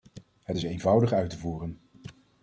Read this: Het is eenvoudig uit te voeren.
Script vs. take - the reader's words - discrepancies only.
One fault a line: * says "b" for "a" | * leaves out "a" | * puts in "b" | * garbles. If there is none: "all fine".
all fine